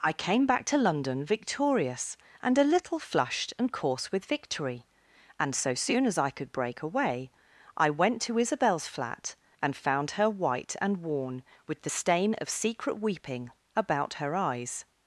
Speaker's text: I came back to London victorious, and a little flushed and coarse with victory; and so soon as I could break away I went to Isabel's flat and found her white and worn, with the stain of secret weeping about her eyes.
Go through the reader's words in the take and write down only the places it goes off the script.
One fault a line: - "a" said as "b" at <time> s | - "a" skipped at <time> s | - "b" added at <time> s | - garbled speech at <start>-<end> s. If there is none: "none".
none